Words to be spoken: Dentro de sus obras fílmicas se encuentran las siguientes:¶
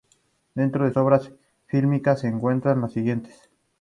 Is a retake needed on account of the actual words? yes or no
yes